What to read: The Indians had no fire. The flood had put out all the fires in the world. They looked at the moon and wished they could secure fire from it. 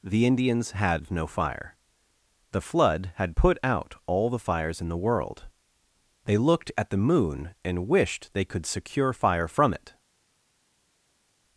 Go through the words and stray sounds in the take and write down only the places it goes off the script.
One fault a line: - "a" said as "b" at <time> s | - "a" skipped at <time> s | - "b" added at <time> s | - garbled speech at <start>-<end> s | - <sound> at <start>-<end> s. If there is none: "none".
none